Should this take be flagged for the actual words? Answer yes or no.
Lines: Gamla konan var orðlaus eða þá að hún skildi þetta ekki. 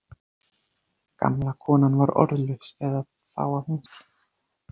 yes